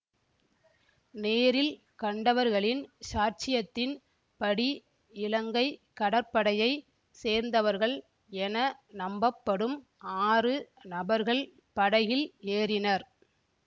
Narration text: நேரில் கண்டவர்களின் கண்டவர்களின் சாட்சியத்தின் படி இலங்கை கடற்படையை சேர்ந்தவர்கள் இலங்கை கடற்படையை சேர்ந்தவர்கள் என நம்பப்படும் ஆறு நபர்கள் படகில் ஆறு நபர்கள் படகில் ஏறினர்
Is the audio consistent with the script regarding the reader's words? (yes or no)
no